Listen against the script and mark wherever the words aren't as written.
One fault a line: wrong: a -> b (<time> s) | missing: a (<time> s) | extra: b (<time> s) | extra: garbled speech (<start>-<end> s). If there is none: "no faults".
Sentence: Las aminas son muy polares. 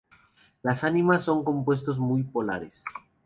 extra: compuestos (1.4 s)